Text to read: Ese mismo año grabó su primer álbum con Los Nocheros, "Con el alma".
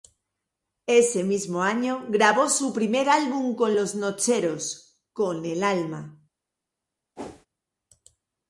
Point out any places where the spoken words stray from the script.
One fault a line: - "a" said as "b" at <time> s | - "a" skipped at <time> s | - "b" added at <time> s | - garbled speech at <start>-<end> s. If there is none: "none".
none